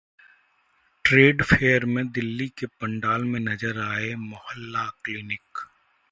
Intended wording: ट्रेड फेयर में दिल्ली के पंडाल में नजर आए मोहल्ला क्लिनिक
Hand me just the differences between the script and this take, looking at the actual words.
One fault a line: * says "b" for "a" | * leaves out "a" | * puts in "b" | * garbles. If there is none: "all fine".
all fine